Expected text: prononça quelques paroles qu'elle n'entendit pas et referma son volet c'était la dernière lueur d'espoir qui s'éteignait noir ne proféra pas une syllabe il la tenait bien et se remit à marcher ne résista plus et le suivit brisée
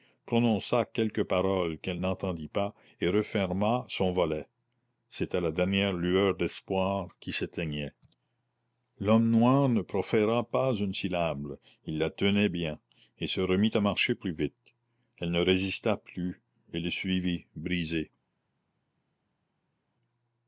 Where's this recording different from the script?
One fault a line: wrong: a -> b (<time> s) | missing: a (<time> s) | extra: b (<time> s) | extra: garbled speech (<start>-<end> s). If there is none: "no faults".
extra: l'homme (9.0 s)
extra: plus vite elle (14.1 s)